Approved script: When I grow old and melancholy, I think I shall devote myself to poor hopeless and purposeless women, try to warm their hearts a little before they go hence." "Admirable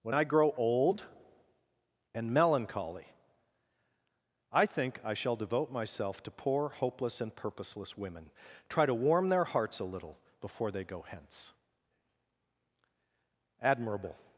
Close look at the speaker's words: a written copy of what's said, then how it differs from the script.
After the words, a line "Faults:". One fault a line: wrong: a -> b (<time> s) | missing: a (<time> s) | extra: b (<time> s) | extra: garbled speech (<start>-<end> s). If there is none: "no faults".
When I grow old and melancholy, I think I shall devote myself to poor hopeless and purposeless women, try to warm their hearts a little before they go hence." "Admirable
Faults:
no faults